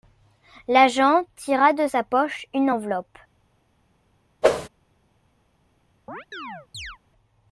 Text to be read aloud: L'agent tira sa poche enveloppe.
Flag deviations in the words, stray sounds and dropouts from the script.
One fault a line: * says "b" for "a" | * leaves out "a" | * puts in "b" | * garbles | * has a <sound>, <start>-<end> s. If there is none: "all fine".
* puts in "de"
* puts in "une"
* has a whoosh, 4.4-4.7 s
* has a chirp, 6.1-7.0 s